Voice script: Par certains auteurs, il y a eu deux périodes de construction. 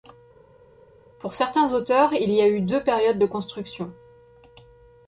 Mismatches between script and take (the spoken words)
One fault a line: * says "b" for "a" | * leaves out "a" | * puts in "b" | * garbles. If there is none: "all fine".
* says "Pour" for "Par"